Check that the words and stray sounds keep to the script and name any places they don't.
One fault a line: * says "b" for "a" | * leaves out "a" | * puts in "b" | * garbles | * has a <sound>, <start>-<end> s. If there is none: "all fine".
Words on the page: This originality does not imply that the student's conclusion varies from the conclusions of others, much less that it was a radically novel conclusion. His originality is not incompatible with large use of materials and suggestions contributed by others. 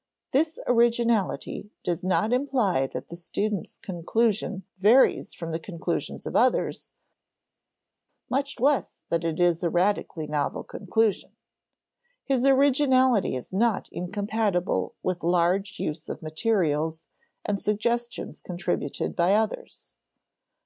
* says "is" for "was"